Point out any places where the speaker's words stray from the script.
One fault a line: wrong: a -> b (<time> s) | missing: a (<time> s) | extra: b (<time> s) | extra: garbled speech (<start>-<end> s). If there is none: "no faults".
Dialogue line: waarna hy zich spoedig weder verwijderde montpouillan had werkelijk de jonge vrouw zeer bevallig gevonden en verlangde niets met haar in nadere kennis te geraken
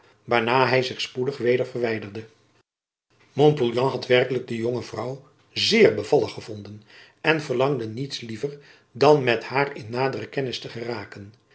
extra: liever dan (8.2 s)